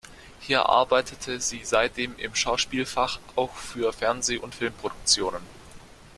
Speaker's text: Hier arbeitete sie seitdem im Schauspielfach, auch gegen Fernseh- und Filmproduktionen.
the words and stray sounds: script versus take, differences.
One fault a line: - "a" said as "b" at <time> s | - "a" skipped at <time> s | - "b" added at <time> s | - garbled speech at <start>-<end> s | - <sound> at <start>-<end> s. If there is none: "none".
- "gegen" said as "für" at 3.5 s